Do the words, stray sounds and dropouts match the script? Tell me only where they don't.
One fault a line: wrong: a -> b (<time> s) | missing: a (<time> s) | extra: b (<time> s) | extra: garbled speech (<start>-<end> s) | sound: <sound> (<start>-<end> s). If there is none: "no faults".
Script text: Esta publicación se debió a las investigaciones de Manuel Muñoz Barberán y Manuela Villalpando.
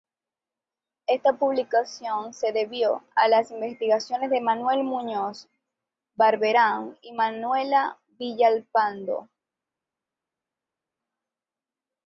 no faults